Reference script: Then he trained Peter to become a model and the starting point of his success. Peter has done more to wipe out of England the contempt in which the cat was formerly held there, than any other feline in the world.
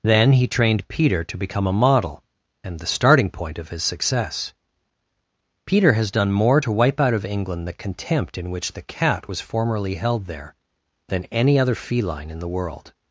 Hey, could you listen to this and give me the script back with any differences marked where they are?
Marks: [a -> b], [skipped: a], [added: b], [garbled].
Then he trained Peter to become a model and the starting point of his success. Peter has done more to wipe out of England the contempt in which the cat was formerly held there, than any other feline in the world.